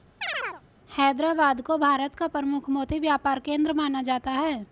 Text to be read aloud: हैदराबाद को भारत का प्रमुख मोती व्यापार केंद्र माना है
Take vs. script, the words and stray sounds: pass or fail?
fail